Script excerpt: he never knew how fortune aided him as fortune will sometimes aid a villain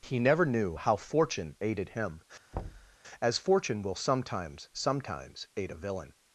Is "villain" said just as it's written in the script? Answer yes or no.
yes